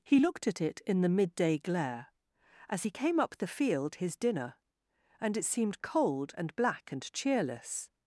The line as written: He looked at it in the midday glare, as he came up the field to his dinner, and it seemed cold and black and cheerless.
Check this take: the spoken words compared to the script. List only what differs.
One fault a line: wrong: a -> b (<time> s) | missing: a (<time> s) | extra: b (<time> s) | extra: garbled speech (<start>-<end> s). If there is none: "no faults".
missing: to (4.0 s)